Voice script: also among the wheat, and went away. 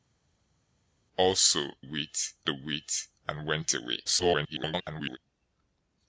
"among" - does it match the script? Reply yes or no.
no